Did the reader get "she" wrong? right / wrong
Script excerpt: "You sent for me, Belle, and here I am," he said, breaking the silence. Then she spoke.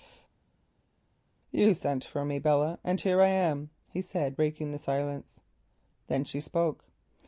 right